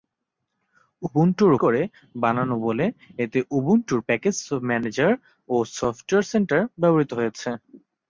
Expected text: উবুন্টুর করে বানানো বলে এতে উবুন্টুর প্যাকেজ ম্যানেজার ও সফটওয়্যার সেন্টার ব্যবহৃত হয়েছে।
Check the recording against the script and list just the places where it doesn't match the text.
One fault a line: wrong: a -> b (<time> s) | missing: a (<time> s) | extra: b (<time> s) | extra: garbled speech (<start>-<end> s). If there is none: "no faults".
no faults